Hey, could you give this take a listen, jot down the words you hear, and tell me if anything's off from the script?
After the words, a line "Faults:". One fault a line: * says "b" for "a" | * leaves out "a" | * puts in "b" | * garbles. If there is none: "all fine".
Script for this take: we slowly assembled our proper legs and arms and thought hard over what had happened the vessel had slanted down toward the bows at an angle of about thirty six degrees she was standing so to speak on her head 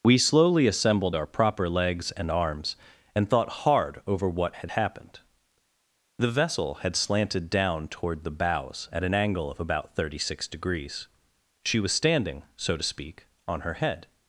we slowly assembled our proper legs and arms and thought hard over what had happened the vessel had slanted down toward the bows at an angle of about thirty six degrees she was standing so to speak on her head
Faults:
all fine